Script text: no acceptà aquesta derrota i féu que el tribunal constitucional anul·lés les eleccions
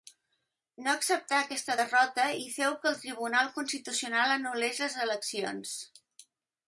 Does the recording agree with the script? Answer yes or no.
yes